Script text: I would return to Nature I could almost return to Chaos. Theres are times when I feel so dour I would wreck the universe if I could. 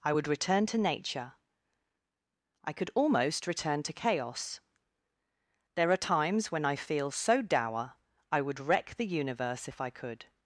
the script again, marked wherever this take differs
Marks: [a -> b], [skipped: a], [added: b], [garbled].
I would return to Nature I could almost return to Chaos. [Theres -> There] are times when I feel so dour I would wreck the universe if I could.